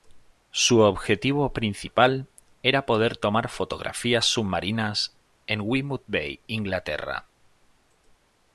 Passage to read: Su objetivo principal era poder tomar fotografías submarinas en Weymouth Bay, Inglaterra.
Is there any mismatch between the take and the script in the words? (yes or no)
no